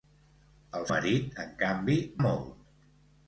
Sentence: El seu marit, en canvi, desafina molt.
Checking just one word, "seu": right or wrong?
wrong